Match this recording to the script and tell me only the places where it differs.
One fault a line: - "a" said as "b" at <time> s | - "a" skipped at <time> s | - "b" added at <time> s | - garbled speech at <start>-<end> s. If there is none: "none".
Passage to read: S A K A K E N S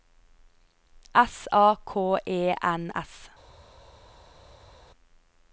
- "A K" skipped at 2.2 s